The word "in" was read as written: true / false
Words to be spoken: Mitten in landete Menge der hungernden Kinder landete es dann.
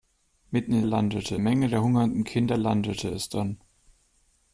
true